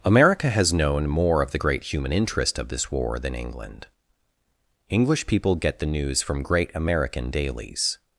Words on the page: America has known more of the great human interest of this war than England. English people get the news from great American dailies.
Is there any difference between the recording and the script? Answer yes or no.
no